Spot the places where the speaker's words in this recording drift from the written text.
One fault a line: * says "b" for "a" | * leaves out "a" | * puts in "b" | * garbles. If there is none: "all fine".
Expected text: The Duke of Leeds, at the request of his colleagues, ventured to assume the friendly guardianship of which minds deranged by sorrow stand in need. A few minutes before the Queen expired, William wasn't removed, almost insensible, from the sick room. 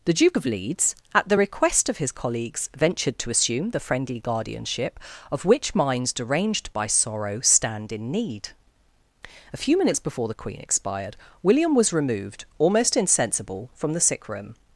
* says "was" for "wasn't"